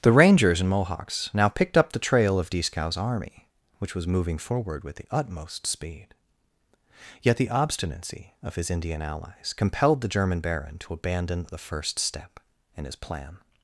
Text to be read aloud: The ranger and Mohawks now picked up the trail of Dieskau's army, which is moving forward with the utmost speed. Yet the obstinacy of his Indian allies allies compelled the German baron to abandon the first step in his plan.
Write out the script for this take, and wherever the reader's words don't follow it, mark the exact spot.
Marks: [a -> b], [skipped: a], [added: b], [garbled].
The [ranger -> rangers] and Mohawks now picked up the trail of Dieskau's army, which [is -> was] moving forward with the utmost speed. Yet the obstinacy of his Indian allies [skipped: allies] compelled the German baron to abandon the first step in his plan.